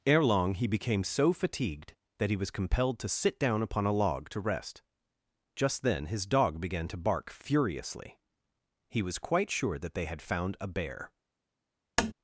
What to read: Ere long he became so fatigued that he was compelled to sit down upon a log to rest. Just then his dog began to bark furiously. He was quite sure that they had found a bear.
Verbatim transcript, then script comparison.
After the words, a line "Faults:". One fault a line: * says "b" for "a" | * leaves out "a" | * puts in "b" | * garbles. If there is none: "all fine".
Ere long he became so fatigued that he was compelled to sit down upon a log to rest. Just then his dog began to bark furiously. He was quite sure that they had found a bear.
Faults:
all fine